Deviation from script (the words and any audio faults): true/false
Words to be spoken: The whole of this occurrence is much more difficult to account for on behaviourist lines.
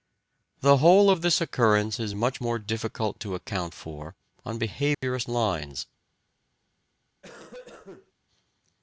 true